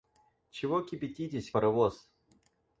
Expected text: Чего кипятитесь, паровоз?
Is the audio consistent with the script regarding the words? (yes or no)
yes